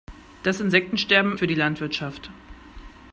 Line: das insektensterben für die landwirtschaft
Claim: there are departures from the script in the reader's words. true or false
false